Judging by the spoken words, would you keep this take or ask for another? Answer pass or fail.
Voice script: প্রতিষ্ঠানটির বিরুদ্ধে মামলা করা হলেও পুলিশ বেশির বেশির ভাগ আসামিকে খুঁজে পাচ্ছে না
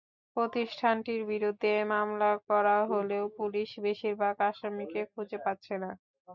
fail